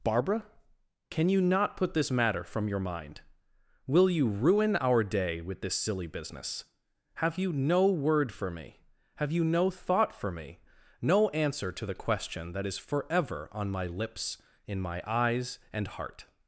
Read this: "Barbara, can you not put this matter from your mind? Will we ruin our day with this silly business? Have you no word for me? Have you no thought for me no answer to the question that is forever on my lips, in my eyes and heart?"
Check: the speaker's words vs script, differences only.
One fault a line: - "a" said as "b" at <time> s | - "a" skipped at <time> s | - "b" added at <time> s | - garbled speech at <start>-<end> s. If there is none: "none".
- "we" said as "you" at 4.1 s